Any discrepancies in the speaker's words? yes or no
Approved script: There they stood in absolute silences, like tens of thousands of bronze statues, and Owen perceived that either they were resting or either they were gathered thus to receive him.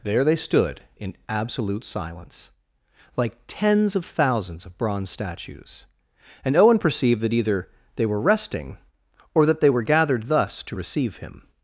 yes